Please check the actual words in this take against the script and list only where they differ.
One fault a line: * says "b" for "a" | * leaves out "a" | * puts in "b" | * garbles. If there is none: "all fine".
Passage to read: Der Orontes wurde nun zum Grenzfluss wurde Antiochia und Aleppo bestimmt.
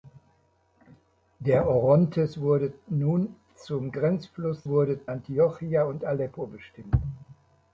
all fine